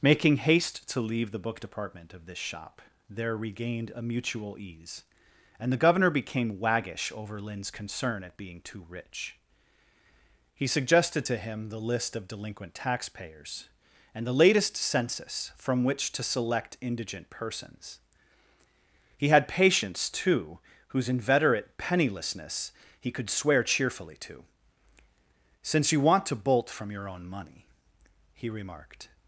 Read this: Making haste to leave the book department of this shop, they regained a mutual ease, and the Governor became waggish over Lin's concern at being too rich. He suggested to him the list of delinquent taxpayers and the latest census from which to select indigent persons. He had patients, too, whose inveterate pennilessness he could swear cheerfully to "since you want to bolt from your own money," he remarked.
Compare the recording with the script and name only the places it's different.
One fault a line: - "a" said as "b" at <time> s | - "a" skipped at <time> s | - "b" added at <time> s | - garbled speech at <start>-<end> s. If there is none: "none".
- "they" said as "there" at 3.1 s